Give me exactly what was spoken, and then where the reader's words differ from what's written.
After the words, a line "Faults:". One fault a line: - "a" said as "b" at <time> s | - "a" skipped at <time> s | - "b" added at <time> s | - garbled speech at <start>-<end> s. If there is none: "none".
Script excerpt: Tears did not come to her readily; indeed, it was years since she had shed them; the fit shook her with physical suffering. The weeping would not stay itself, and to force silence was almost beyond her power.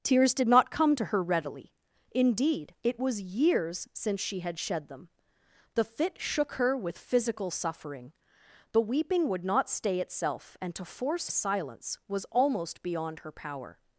Tears did not come to her readily; indeed, it was years since she had shed them; the fit shook her with physical suffering. The weeping would not stay itself, and to force silence was almost beyond her power.
Faults:
none